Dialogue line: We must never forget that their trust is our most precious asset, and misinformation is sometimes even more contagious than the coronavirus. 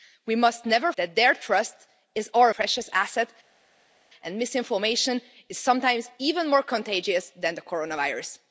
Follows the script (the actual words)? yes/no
no